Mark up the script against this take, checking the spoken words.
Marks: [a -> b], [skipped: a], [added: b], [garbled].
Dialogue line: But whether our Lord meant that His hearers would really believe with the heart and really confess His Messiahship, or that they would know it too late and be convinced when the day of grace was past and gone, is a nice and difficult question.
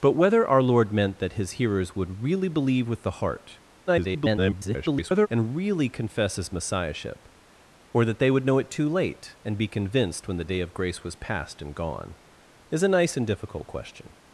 But whether our Lord meant that His hearers would really believe with the heart [garbled] and really confess His Messiahship, or that they would know it too late and be convinced when the day of grace was past and gone, is a nice and difficult question.